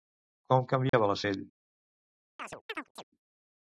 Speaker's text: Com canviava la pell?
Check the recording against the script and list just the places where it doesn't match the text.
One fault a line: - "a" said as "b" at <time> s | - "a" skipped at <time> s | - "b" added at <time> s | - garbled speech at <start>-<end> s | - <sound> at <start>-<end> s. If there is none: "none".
- dropout at 0.9-0.9 s
- chirp at 2.4-3.0 s